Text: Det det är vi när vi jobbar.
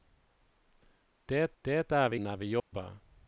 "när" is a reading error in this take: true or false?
false